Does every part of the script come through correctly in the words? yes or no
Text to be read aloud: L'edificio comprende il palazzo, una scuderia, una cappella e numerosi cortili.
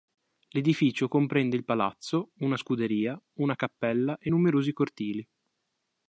yes